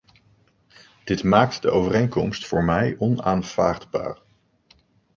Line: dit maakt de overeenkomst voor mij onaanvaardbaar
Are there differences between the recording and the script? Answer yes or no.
no